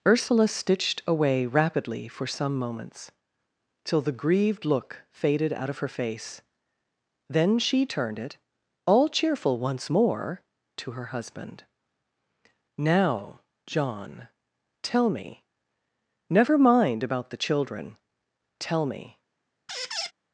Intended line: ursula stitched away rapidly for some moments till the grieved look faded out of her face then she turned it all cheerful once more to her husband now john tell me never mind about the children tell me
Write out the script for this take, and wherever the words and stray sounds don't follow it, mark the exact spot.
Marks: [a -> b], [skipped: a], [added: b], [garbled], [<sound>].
ursula stitched away rapidly for some moments till the grieved look faded out of her face then she turned it all cheerful once more to her husband now john tell me never mind about the children tell me [squeak]